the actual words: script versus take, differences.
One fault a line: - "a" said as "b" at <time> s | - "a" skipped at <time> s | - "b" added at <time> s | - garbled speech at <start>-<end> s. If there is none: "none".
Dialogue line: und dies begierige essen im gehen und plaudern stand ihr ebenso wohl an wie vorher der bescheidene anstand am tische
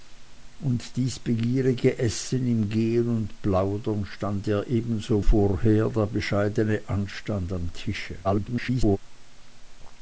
- "wohl an wie" skipped at 5.2 s
- garbled speech at 8.2-9.0 s